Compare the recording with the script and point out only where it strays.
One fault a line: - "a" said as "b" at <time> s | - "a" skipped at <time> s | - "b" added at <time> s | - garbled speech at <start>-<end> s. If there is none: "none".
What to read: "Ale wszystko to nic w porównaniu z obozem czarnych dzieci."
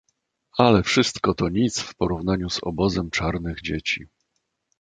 none